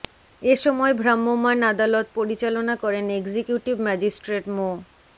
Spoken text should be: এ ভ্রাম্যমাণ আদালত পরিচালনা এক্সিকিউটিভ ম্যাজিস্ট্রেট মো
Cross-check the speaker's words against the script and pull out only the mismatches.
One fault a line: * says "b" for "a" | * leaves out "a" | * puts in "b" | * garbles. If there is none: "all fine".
* puts in "সময়"
* puts in "করেন"